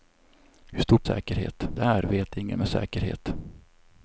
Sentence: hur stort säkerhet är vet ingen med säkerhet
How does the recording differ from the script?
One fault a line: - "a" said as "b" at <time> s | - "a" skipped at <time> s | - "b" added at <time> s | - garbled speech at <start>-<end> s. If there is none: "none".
none